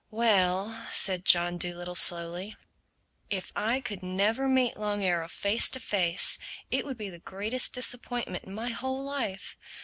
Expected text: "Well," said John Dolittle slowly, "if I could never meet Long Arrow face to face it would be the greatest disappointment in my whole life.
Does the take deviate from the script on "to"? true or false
false